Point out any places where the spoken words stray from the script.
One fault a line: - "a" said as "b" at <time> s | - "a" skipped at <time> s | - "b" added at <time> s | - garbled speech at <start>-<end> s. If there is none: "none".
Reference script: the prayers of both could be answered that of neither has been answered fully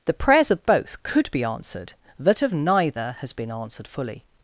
none